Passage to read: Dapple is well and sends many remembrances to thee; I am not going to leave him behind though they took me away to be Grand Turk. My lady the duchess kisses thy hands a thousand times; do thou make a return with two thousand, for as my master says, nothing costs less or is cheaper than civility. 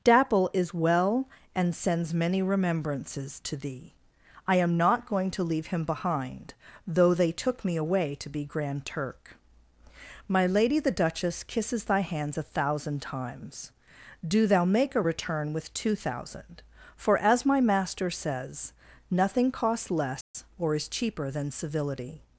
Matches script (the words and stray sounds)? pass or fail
fail